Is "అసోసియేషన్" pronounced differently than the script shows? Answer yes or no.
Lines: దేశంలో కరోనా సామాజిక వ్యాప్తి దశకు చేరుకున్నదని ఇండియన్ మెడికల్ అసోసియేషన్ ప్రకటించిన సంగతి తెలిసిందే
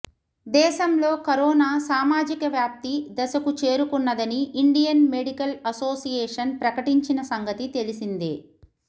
no